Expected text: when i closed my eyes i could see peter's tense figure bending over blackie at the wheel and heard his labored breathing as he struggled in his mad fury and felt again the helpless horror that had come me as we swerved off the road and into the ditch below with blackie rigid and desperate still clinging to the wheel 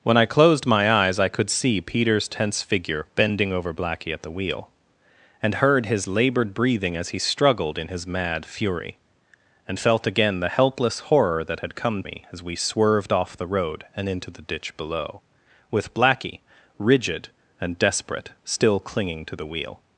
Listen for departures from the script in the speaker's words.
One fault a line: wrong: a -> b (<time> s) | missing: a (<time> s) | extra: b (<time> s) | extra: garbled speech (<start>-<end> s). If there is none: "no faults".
no faults